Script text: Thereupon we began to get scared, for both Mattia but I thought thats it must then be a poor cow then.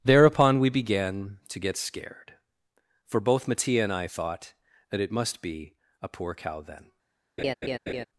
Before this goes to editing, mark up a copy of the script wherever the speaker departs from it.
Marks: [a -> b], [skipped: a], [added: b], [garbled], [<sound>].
Thereupon we began to get scared, for both Mattia [but -> and] I thought [thats -> that] it must [skipped: then] be a poor cow then. [laugh]